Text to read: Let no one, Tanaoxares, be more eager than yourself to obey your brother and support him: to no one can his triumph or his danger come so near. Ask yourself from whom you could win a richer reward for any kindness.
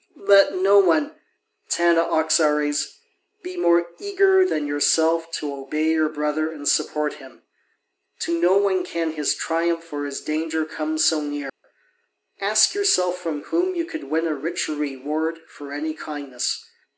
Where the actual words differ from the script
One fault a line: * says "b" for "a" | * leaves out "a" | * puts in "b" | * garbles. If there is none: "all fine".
all fine